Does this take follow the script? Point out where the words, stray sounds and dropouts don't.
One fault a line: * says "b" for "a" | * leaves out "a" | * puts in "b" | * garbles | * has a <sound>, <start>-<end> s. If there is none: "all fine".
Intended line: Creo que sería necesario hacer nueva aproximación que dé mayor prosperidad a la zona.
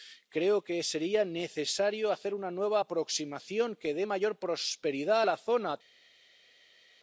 * puts in "una"